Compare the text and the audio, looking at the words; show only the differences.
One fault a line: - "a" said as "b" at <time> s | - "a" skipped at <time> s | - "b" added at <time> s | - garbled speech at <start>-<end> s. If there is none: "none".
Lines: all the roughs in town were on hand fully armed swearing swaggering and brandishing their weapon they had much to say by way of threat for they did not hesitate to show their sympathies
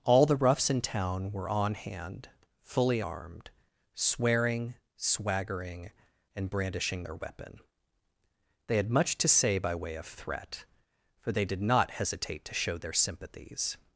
none